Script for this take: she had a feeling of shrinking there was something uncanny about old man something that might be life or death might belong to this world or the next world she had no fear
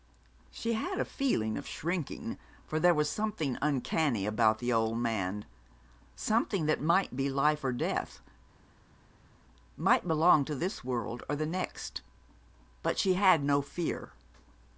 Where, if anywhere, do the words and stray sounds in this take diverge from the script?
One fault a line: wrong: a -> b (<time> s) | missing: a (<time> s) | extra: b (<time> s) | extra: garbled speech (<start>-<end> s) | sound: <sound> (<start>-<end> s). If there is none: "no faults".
extra: for (2.6 s)
extra: the (4.6 s)
wrong: world -> but (12.8 s)